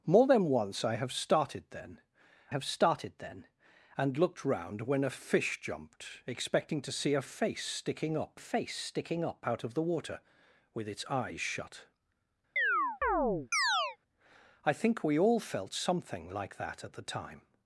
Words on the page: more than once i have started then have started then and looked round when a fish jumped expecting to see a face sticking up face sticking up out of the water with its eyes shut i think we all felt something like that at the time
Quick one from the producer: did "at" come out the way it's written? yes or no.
yes